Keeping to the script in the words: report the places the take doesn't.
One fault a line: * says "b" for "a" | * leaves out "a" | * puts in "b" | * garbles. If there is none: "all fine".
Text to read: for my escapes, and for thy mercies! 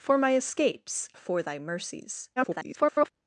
* leaves out "and"
* garbles